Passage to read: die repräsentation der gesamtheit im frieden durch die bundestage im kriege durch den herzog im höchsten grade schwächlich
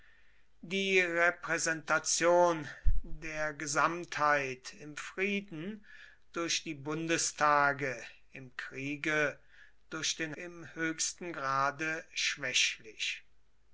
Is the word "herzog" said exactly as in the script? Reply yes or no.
no